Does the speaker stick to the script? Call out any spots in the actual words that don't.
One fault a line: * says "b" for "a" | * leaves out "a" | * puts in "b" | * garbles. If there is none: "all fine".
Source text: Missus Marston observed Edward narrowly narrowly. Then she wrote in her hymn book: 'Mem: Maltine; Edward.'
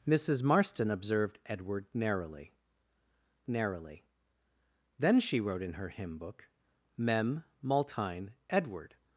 all fine